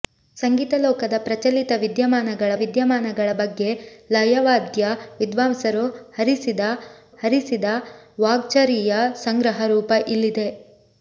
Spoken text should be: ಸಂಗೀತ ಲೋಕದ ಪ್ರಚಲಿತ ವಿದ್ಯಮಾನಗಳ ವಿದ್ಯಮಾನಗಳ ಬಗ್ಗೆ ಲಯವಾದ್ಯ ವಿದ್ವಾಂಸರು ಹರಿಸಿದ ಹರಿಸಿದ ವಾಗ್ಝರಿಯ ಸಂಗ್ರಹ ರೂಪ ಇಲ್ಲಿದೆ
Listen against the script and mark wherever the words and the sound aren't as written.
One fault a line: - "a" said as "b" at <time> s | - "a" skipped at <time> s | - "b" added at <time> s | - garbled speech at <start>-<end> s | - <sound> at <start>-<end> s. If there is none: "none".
none